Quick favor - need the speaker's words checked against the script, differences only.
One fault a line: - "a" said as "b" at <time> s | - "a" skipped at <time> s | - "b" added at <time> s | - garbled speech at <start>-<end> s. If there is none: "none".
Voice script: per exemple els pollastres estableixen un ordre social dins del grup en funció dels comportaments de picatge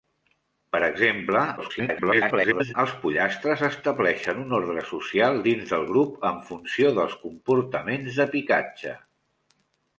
- garbled speech at 1.6-2.7 s